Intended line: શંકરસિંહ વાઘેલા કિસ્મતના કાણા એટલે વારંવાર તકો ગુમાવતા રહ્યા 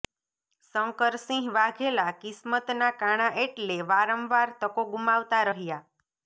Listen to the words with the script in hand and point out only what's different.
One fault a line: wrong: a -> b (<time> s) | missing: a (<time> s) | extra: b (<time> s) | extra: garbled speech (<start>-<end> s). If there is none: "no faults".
no faults